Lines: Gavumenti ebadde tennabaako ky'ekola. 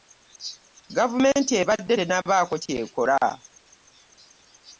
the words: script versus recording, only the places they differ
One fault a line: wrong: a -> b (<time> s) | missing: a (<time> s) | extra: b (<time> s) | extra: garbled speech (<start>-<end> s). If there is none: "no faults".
no faults